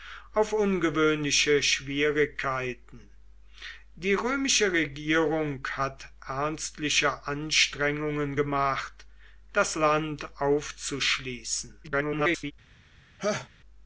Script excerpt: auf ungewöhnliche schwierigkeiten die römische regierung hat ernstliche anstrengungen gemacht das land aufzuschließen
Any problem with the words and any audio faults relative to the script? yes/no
yes